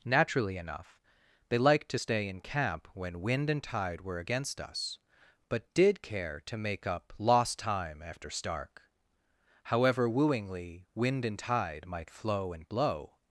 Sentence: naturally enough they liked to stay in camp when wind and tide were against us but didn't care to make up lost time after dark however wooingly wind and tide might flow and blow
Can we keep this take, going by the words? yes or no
no